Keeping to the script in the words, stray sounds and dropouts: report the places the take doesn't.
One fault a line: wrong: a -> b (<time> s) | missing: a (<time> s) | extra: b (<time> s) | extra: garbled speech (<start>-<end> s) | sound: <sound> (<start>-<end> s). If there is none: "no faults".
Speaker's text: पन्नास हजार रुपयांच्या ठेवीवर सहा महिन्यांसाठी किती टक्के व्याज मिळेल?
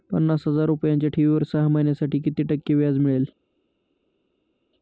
no faults